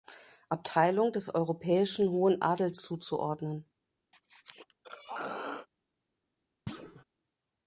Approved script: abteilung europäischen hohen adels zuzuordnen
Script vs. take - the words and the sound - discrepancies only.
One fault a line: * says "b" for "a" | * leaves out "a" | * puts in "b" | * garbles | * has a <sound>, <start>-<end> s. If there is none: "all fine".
* puts in "des"
* has a throat clearing, 4.1-5.7 s
* has a thud, 6.7-7.0 s